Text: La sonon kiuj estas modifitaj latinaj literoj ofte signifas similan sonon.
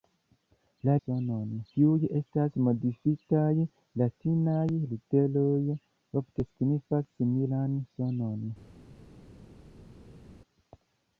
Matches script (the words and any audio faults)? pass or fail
pass